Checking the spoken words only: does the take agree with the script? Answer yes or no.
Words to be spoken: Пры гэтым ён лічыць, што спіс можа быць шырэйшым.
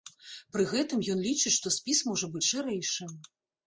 yes